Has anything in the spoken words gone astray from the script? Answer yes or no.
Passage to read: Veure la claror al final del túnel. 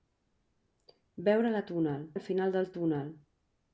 yes